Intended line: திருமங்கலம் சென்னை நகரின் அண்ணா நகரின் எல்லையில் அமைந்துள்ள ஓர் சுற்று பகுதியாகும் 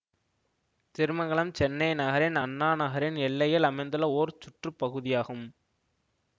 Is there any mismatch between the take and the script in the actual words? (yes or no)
no